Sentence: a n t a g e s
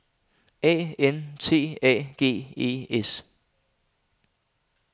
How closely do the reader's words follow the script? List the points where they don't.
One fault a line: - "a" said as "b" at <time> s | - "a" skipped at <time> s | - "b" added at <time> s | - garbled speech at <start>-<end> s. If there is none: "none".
none